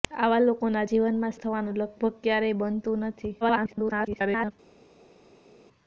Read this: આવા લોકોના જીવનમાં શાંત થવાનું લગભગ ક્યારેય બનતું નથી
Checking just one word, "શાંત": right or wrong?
wrong